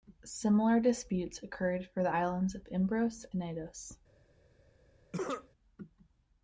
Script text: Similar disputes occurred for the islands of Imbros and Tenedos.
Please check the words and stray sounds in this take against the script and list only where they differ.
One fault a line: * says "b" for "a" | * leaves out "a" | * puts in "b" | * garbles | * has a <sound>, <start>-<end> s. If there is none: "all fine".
* leaves out "and"
* has a cough, 5.1-5.5 s